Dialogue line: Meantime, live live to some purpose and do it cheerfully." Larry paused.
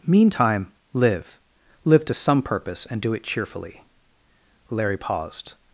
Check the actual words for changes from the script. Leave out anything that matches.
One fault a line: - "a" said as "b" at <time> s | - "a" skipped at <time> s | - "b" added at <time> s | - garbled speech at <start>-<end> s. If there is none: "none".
none